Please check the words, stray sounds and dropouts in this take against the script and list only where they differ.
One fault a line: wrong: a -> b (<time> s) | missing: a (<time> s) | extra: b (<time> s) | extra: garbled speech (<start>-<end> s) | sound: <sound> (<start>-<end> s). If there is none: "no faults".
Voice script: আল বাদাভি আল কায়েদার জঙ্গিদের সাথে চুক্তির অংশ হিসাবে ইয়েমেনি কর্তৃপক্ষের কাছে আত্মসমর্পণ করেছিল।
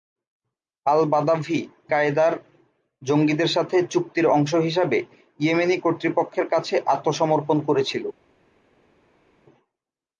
missing: আল (1.6 s)